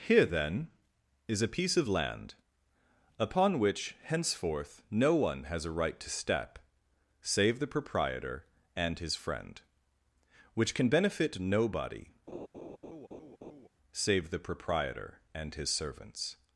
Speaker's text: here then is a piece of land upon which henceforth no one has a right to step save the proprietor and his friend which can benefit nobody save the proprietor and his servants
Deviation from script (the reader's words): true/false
false